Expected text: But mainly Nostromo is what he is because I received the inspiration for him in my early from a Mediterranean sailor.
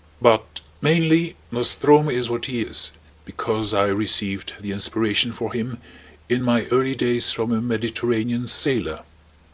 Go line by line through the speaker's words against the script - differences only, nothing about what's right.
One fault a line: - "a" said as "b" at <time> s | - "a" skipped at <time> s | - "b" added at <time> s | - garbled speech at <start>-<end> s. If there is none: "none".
- "days" added at 7.0 s